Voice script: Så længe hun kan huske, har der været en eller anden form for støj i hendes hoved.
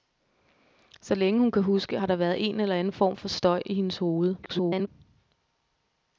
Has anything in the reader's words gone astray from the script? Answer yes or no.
yes